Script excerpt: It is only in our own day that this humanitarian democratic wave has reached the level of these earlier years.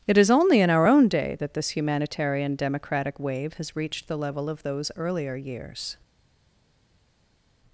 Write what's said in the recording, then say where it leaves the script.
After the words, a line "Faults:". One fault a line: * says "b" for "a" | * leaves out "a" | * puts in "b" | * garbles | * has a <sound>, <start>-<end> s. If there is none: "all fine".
It is only in our own day that this humanitarian democratic wave has reached the level of those earlier years.
Faults:
* says "those" for "these"